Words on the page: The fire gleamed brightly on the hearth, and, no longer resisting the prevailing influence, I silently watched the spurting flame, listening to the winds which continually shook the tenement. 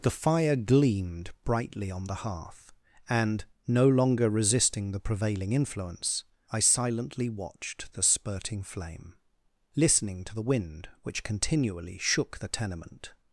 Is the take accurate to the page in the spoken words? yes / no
no